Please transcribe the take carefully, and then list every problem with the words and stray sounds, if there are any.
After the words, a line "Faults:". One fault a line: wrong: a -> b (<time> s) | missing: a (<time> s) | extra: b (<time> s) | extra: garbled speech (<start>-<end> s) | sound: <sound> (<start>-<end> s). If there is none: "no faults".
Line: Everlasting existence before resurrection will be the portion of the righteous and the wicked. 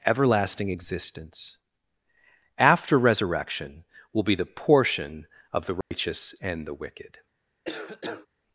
Everlasting existence after resurrection will be the portion of the righteous and the wicked.
Faults:
wrong: before -> after (2.6 s)
sound: dropout (5.8-5.9 s)
sound: cough (7.7-8.3 s)